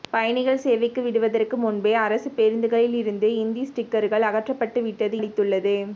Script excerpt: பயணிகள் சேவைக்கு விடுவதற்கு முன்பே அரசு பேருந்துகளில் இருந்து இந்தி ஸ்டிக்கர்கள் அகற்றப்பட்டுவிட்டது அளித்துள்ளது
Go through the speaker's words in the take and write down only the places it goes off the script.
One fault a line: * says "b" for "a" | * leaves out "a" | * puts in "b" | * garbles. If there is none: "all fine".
all fine